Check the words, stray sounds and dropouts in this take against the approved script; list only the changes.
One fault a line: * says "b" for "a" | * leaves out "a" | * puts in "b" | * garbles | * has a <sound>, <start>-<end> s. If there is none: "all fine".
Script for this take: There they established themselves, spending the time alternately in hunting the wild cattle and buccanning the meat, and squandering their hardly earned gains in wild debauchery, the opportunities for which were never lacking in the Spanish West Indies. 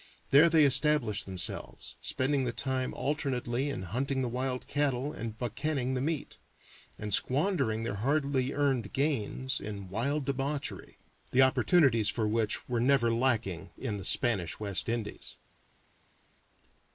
all fine